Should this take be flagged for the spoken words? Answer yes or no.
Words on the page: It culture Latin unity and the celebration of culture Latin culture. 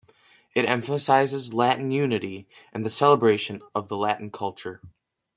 yes